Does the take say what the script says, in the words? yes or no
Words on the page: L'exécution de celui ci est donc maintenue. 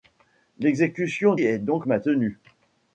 no